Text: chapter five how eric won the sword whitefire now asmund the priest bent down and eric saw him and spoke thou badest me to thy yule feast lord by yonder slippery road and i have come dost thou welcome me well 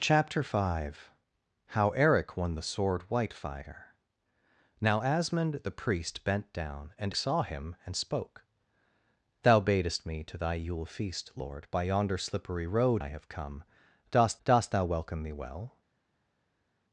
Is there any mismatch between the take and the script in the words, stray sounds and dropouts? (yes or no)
yes